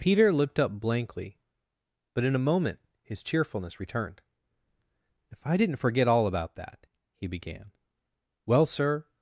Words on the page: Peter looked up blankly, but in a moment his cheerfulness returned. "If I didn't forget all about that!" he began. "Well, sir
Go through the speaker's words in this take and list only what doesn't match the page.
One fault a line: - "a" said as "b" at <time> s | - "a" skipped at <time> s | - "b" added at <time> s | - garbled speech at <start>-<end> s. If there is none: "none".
none